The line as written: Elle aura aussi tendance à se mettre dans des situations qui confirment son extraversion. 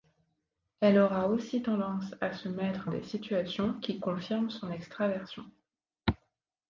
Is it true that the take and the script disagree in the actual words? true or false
true